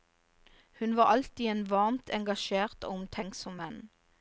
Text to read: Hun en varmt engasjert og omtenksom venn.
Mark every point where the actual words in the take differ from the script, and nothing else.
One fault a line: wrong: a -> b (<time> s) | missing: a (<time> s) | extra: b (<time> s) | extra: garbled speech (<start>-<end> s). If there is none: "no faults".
extra: var alltid (0.9 s)